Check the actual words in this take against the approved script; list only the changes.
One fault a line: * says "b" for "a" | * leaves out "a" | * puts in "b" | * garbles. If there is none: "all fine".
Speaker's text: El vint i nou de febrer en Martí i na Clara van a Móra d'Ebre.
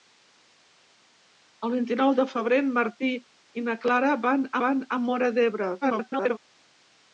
* puts in "van"
* garbles